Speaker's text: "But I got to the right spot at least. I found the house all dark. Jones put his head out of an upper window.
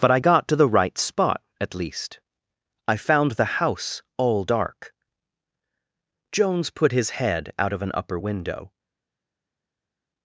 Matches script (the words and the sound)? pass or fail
pass